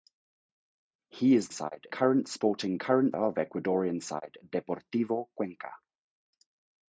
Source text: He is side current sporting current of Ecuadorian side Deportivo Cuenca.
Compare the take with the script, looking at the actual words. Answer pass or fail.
pass